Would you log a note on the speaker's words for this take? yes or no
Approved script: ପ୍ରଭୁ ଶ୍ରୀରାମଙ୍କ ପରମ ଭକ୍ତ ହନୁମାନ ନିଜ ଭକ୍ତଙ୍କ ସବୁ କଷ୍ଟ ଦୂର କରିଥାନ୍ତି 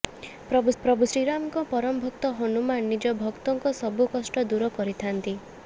yes